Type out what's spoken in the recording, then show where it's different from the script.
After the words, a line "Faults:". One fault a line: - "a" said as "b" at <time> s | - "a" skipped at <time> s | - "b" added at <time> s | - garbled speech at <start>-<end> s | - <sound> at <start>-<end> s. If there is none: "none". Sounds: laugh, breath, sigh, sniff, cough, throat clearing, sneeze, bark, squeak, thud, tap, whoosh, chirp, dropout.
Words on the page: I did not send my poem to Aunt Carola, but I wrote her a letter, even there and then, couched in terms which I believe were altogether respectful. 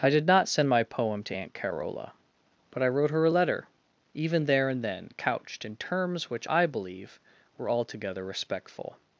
I did not send my poem to Aunt Carola, but I wrote her a letter, even there and then, couched in terms which I believe were altogether respectful.
Faults:
none